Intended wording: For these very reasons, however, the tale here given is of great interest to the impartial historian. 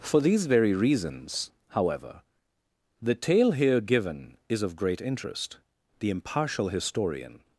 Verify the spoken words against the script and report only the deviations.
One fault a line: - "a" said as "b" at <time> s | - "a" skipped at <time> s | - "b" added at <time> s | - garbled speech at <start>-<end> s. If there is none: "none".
- "to" skipped at 5.6 s